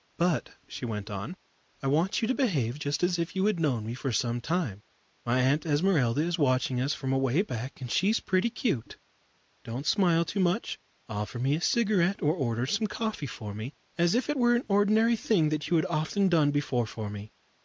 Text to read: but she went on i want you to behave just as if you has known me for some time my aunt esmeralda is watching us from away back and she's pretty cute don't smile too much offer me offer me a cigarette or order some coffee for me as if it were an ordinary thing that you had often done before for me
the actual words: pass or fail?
fail